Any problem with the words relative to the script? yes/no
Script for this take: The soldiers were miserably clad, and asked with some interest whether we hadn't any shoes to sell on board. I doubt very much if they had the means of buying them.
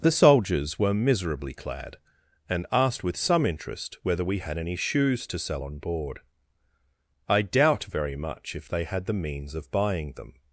yes